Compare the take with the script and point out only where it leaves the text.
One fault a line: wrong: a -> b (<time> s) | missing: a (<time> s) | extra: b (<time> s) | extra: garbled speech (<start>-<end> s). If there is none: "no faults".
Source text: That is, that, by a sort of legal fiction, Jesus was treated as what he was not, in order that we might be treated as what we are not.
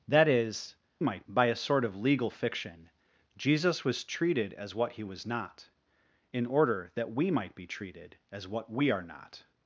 wrong: that -> might (1.0 s)